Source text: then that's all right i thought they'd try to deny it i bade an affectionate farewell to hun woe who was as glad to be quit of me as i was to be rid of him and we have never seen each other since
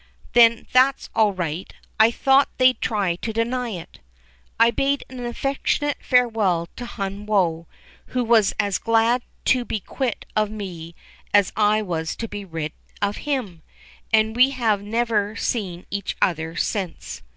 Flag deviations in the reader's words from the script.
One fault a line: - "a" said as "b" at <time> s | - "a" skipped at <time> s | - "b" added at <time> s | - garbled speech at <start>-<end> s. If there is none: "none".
none